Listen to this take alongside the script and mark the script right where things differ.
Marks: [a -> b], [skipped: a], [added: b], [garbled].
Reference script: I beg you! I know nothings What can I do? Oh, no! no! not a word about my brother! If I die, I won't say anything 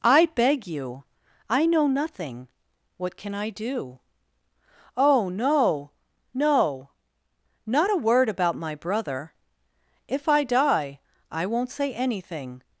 I beg you! I know [nothings -> nothing] What can I do? Oh, no! no! not a word about my brother! If I die, I won't say anything